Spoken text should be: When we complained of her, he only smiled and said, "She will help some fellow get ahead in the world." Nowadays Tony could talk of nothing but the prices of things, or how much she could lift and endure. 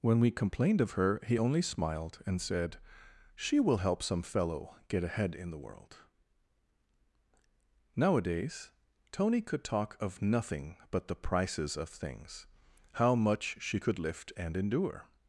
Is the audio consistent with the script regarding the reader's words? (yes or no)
no